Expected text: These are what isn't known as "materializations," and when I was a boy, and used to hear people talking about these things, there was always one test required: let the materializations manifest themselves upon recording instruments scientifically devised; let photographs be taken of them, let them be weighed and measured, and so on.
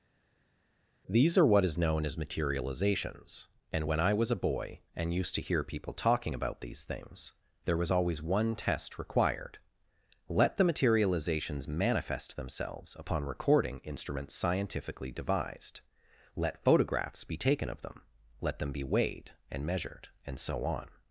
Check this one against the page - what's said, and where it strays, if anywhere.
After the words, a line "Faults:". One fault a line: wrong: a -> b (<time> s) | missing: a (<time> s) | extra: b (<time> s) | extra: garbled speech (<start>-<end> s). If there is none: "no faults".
These are what is known as "materializations," and when I was a boy, and used to hear people talking about these things, there was always one test required: let the materializations manifest themselves upon recording instruments scientifically devised; let photographs be taken of them, let them be weighed and measured, and so on.
Faults:
wrong: isn't -> is (1.6 s)